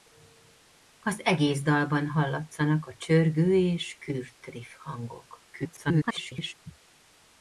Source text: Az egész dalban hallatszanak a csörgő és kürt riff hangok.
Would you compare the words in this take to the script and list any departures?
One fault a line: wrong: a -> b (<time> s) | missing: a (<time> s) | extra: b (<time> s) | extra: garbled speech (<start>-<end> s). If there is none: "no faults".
extra: garbled speech (5.5-6.5 s)